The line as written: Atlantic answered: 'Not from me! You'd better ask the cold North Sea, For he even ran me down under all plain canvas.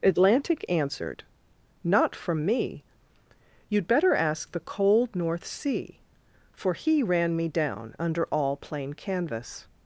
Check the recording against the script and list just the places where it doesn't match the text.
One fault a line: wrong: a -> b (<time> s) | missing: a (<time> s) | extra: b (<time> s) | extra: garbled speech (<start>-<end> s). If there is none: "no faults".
missing: even (7.0 s)